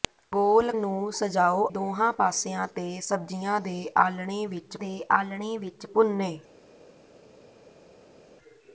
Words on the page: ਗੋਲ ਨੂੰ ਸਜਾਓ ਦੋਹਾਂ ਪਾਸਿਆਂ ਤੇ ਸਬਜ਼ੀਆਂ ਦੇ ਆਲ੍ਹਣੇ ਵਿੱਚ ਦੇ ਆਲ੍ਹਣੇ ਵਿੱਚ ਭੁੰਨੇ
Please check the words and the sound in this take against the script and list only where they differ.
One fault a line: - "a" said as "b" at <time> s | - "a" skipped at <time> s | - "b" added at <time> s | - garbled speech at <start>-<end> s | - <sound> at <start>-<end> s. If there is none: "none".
none